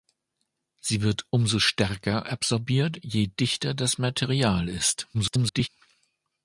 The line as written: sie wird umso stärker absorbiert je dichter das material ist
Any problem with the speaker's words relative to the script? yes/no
yes